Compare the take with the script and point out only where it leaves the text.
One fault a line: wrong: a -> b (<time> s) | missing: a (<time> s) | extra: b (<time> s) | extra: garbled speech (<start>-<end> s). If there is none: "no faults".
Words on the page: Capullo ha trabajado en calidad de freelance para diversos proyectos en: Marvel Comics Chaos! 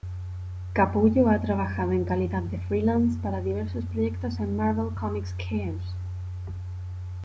no faults